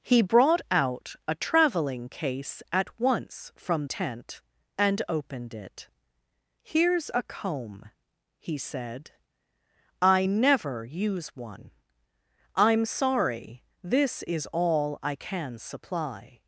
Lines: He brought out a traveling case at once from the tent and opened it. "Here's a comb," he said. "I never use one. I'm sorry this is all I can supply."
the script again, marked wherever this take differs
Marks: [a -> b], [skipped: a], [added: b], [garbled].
He brought out a traveling case at once from [skipped: the] tent and opened it. "Here's a comb," he said. "I never use one. I'm sorry this is all I can supply."